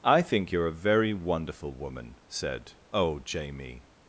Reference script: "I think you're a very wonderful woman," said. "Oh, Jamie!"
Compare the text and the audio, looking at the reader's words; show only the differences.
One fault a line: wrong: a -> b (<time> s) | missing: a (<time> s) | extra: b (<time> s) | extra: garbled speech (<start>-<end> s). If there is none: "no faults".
no faults